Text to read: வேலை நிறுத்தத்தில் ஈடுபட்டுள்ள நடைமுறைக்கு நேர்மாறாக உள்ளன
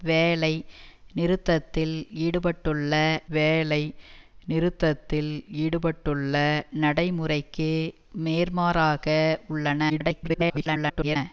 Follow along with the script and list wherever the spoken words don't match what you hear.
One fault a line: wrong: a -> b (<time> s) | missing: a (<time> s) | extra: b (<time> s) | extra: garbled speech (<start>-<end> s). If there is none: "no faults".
extra: வேலை நிறுத்தத்தில் ஈடுபட்டுள்ள (3.3 s)
extra: garbled speech (9.9-11.2 s)